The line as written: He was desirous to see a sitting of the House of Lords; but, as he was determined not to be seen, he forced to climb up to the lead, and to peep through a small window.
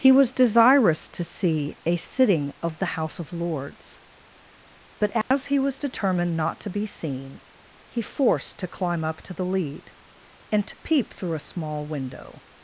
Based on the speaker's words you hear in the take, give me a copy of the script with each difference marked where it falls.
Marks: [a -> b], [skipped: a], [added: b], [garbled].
He was desirous to see a sitting of the House of Lords; but, as he was determined not to be seen, he forced to climb up to the lead, and to peep through a small window.